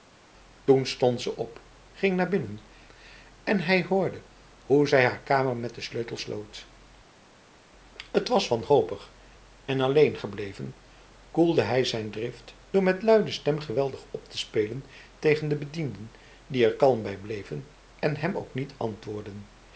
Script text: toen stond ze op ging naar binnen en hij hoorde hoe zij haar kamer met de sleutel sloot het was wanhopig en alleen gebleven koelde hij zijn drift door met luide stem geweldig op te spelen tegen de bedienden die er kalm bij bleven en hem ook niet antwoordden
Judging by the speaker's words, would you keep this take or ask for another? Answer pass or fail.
pass